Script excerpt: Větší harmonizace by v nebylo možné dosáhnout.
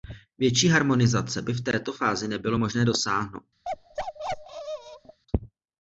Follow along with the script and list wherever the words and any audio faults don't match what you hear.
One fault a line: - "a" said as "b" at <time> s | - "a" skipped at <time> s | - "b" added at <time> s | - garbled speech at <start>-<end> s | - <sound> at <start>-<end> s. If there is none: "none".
- "této fázi" added at 1.6 s
- bark at 3.6-5.2 s